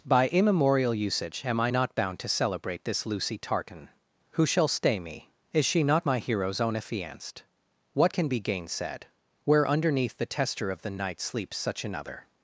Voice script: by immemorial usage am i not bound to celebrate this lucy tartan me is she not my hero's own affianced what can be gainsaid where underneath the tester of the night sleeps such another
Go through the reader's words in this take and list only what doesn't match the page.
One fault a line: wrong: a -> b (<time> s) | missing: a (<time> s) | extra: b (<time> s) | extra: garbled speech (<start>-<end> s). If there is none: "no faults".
extra: who shall stay (4.3 s)